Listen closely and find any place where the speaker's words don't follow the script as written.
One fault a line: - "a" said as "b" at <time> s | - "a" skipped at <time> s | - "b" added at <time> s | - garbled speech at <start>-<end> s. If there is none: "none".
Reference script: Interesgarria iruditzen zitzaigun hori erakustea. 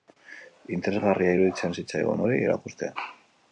none